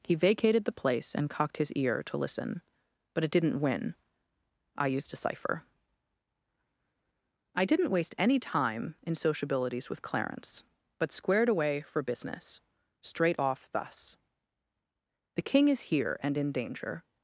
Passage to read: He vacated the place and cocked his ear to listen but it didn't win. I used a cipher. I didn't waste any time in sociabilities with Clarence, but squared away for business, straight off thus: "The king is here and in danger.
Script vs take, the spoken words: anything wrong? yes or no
no